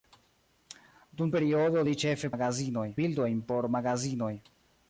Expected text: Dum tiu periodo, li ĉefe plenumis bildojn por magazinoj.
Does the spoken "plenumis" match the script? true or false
false